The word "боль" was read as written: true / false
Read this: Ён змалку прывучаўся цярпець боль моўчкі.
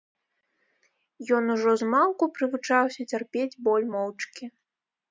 true